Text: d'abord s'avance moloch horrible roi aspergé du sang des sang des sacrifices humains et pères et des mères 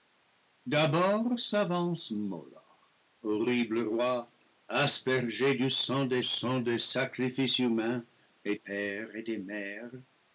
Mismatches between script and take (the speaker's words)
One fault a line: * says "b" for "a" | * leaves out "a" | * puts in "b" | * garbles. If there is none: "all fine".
all fine